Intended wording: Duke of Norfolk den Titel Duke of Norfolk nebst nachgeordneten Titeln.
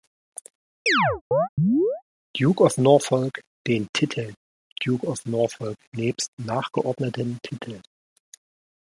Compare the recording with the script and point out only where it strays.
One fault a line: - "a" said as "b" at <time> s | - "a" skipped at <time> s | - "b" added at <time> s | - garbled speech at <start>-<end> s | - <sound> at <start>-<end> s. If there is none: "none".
- chirp at 0.9-2.0 s